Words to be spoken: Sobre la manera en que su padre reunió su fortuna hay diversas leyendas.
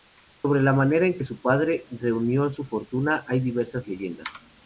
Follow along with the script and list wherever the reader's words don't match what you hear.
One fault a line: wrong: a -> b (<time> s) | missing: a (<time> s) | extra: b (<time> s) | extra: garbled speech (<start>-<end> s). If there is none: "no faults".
no faults